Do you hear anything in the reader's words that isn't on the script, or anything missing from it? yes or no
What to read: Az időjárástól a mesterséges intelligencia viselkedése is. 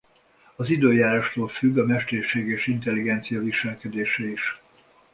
yes